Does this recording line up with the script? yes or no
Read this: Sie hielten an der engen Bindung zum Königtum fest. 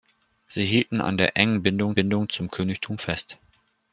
no